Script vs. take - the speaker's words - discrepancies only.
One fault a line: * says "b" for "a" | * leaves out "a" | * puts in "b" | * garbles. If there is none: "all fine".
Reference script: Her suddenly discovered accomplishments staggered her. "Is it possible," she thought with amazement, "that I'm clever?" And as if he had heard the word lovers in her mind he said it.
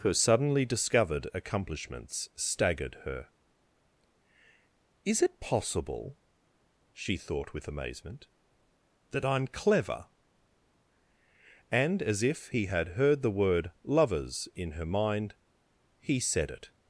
all fine